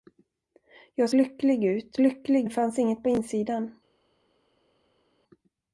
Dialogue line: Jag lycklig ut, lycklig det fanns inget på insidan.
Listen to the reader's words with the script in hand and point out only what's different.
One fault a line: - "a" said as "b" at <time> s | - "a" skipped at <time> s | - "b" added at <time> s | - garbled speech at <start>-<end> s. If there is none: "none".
none